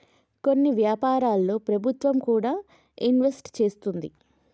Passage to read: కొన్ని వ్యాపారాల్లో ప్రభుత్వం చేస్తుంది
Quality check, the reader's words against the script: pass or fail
fail